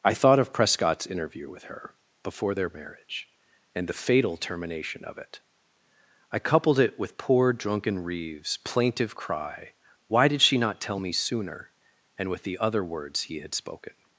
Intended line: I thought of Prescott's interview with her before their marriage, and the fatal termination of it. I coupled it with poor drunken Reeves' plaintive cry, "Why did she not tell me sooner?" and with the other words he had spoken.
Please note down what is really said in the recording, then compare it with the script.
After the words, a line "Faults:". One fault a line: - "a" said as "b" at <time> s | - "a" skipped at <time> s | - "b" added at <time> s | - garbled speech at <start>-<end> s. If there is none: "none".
I thought of Prescott's interview with her before their marriage, and the fatal termination of it. I coupled it with poor drunken Reeves' plaintive cry, "Why did she not tell me sooner?" and with the other words he had spoken.
Faults:
none